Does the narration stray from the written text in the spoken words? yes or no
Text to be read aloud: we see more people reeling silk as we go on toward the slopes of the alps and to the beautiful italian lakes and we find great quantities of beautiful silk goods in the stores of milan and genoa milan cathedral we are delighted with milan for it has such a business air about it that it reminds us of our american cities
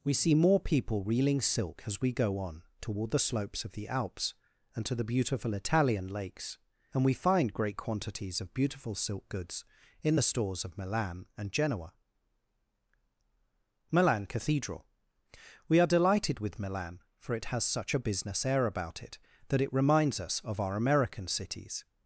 no